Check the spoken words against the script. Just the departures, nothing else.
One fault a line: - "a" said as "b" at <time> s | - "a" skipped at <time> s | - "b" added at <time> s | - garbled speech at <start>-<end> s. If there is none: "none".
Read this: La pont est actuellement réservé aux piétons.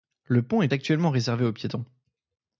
- "La" said as "Le" at 0.2 s